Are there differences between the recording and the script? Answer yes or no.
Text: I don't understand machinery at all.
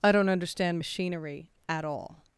no